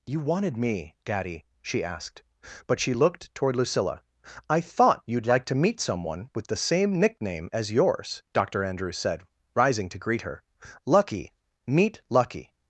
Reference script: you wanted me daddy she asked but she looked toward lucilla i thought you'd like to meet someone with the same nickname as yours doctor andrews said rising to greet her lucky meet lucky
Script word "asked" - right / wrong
right